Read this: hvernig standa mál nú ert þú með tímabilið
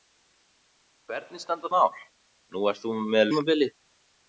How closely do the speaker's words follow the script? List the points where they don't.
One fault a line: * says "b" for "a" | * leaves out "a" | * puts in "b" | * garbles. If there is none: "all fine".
all fine